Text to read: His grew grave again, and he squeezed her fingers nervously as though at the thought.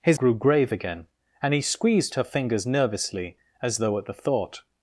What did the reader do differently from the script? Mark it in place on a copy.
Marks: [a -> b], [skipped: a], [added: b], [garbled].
His grew grave again, and he squeezed her fingers nervously as though at the thought.